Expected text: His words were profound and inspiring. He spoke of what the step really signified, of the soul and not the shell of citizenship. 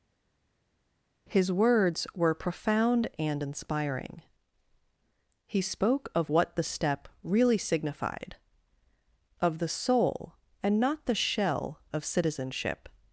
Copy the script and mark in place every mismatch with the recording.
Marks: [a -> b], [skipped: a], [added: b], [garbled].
His words were profound and inspiring. He spoke of what the step really signified, of the soul and not the shell of citizenship.